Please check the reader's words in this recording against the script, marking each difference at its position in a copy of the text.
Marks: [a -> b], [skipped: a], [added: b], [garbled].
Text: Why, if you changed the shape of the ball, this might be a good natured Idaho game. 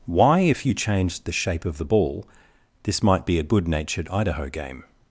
Why, if you changed the shape of the ball, this might be a good natured Idaho game.